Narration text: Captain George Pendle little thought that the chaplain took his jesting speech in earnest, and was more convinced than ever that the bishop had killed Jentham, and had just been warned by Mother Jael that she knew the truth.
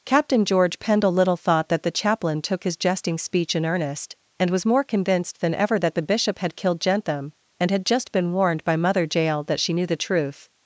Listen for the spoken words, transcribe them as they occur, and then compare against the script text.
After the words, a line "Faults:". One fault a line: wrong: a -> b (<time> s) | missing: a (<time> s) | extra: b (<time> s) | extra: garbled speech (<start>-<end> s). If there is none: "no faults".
Captain George Pendle little thought that the chaplain took his jesting speech in earnest, and was more convinced than ever that the bishop had killed Jentham, and had just been warned by Mother Jael that she knew the truth.
Faults:
no faults